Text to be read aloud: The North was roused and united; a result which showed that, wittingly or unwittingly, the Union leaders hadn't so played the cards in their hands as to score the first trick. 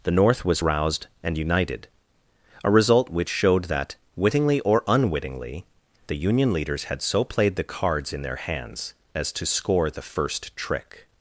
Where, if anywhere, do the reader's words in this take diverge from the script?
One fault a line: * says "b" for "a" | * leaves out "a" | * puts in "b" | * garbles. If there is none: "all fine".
* says "had" for "hadn't"